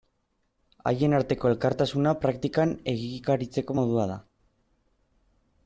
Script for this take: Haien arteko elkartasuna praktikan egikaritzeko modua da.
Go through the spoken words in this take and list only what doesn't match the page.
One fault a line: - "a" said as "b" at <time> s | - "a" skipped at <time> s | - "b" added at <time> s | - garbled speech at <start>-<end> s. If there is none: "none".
none